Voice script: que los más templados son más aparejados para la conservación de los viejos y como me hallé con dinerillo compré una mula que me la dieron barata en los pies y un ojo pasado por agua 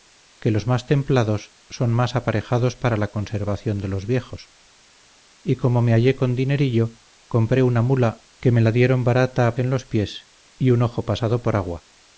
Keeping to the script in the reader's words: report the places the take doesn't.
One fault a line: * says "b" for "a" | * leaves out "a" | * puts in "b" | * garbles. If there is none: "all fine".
all fine